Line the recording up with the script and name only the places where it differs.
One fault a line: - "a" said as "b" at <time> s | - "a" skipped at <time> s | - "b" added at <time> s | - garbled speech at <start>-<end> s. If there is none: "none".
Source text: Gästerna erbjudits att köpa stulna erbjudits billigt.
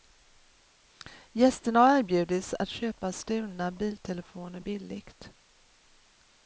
- "har" added at 1.8 s
- "erbjudits" said as "biltelefoner" at 3.7 s